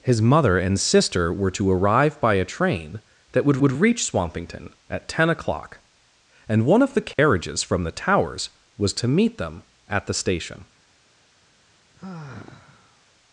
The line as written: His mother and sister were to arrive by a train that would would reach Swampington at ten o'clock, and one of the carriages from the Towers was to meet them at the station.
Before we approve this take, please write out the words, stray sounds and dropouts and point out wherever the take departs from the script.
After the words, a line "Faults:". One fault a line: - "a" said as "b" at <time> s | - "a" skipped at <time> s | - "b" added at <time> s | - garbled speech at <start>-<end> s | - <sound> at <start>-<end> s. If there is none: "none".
His mother and sister were to arrive by a train that would would reach Swampington at ten o'clock, and one of the carriages from the Towers was to meet them at the station.
Faults:
- dropout at 7.1-7.2 s
- sigh at 11.9-13.1 s